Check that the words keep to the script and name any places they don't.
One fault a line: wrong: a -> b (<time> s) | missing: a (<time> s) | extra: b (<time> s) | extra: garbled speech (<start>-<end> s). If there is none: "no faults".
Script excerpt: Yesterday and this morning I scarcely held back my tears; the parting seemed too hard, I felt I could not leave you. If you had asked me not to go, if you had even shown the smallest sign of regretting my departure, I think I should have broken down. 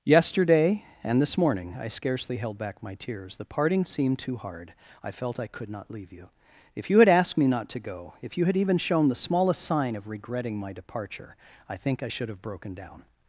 no faults